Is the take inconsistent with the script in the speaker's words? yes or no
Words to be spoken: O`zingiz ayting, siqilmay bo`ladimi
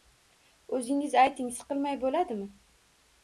no